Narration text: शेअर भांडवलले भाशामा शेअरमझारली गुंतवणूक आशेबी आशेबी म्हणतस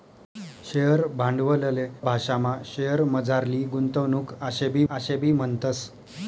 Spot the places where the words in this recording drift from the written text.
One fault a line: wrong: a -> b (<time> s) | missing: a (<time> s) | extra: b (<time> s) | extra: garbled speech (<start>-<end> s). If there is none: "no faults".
no faults